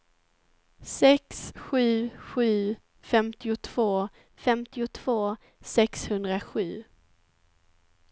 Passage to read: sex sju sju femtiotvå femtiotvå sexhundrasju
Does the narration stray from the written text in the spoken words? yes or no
no